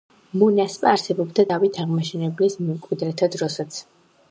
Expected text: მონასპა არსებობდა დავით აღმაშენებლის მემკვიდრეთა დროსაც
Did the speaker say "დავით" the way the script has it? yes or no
yes